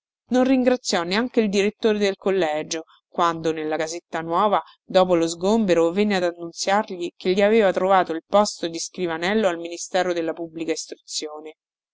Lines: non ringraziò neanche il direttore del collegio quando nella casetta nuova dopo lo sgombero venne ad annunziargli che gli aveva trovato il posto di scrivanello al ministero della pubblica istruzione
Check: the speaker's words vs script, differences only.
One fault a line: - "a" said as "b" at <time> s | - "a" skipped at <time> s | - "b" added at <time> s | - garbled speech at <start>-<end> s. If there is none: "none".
none